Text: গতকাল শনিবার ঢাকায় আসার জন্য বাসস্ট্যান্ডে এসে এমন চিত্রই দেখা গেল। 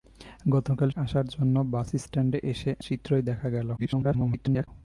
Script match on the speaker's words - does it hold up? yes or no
no